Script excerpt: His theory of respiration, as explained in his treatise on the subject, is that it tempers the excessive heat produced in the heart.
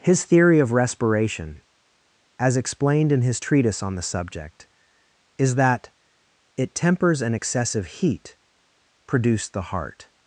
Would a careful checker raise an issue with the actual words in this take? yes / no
yes